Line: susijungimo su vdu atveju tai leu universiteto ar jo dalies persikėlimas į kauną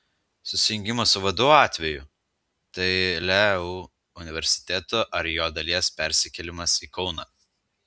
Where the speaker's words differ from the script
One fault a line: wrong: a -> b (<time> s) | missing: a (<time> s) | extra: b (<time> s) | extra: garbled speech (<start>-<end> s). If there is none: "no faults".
no faults